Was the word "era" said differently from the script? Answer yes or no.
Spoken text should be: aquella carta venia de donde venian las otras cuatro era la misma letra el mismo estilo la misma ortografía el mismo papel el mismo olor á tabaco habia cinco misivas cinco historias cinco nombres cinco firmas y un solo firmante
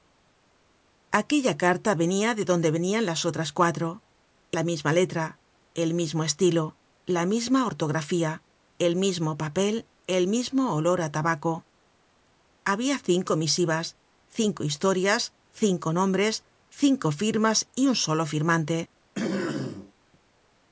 yes